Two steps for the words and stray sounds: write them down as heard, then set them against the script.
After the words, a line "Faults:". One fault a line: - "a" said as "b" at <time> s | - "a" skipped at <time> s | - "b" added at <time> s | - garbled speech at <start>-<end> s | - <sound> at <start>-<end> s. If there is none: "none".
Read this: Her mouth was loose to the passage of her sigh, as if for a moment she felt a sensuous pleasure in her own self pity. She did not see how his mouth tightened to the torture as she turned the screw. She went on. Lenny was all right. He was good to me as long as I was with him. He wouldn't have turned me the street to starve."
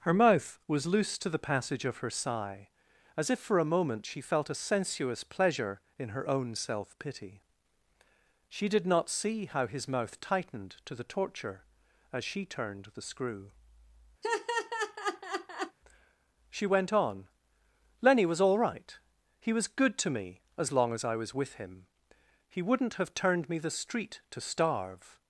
Her mouth was loose to the passage of her sigh, as if for a moment she felt a sensuous pleasure in her own self pity. She did not see how his mouth tightened to the torture as she turned the screw. She went on. Lenny was all right. He was good to me as long as I was with him. He wouldn't have turned me the street to starve."
Faults:
- laugh at 14.2-15.8 s